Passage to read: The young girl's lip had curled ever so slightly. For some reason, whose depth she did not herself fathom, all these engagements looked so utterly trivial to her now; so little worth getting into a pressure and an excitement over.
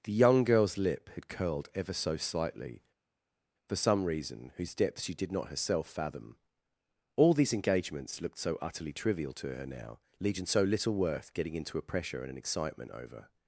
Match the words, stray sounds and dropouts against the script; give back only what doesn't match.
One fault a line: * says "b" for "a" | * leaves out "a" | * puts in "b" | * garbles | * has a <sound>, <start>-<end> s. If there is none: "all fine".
* puts in "legion"